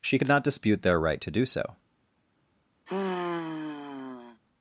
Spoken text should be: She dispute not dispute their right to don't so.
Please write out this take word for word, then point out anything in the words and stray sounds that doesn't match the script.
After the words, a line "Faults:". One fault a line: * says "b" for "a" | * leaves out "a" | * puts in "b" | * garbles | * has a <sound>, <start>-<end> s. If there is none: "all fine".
She could not dispute their right to do so.
Faults:
* says "could" for "dispute"
* says "do" for "don't"
* has a sigh, 2.9-4.4 s